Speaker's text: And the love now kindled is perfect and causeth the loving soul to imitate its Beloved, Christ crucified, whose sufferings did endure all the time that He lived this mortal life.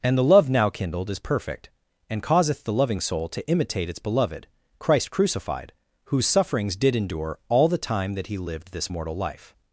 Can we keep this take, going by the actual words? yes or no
yes